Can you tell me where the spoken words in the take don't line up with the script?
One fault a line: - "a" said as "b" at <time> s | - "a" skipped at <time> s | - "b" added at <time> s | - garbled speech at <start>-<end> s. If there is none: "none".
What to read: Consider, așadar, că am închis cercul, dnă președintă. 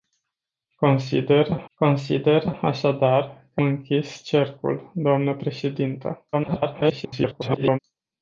- "consider" added at 1.7 s
- "am" skipped at 3.6 s
- garbled speech at 6.3-7.8 s